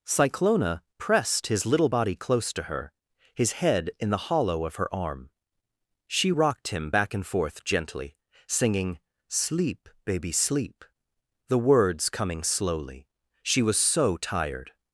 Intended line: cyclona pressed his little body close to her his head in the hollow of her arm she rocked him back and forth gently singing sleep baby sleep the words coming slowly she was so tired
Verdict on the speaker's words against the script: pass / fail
pass